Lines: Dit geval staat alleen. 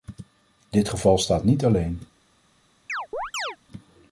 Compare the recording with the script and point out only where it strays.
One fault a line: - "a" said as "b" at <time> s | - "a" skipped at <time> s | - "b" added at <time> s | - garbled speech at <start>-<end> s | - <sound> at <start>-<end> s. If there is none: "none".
- "niet" added at 1.4 s
- chirp at 2.9-3.6 s